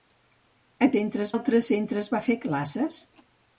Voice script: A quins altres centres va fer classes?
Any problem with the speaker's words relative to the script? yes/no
yes